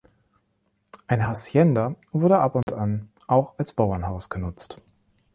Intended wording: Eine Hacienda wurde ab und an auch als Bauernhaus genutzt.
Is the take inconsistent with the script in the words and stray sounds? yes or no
yes